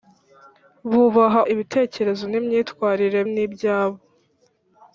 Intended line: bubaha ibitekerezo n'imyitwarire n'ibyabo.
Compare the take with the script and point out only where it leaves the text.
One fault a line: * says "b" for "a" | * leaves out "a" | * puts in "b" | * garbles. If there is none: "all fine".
all fine